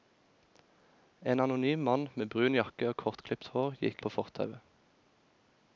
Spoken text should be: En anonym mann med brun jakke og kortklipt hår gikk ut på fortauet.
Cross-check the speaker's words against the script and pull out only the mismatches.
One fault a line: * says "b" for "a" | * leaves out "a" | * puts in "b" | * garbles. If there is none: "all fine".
* leaves out "ut"